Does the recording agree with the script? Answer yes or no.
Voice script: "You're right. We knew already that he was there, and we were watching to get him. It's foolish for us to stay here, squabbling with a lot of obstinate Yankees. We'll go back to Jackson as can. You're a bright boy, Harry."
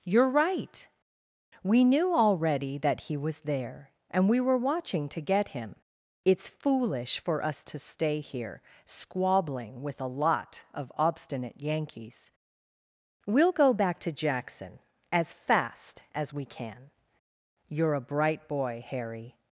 no